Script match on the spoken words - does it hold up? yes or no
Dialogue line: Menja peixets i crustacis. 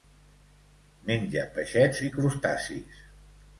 yes